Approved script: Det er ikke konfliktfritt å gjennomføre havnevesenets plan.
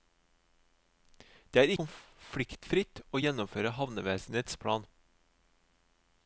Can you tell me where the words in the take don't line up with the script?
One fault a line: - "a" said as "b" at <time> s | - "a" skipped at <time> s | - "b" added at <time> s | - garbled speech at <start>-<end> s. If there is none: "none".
- "ikke" skipped at 1.7 s